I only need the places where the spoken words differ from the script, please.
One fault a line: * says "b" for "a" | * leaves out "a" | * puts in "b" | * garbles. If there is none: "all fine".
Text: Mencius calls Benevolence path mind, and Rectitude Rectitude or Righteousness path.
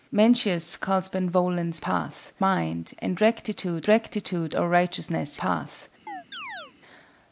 all fine